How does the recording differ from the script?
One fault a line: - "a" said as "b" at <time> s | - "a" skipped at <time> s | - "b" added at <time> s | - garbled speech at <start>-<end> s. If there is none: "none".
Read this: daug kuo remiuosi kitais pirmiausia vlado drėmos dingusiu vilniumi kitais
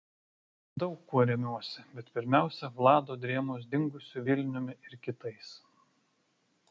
- "kitais" said as "bet" at 2.0 s
- "ir" added at 4.9 s